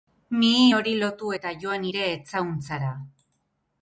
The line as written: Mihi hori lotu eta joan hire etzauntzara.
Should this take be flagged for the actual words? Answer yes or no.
no